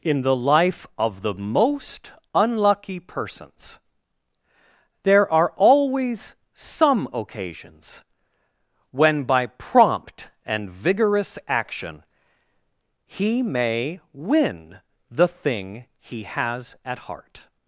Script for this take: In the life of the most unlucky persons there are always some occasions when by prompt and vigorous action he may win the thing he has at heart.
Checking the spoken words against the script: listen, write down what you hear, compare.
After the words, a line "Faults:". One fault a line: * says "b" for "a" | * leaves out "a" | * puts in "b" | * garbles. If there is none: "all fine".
In the life of the most unlucky persons there are always some occasions when by prompt and vigorous action he may win the thing he has at heart.
Faults:
all fine